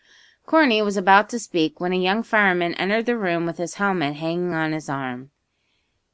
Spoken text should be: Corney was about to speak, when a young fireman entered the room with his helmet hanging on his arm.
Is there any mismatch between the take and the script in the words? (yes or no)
no